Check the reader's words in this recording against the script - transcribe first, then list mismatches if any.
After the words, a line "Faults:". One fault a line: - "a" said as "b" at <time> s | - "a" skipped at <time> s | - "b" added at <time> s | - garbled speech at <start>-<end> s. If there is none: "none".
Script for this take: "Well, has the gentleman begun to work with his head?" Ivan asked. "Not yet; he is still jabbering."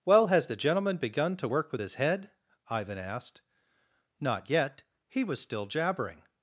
"Well, has the gentleman begun to work with his head?" Ivan asked. "Not yet; he was still jabbering."
Faults:
- "is" said as "was" at 5.2 s